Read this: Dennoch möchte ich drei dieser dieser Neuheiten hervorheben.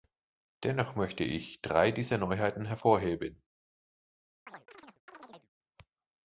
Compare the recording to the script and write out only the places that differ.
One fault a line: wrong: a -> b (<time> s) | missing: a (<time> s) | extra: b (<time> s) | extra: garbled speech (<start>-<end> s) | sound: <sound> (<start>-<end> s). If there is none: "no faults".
missing: dieser (2.2 s)
sound: chirp (4.5-5.5 s)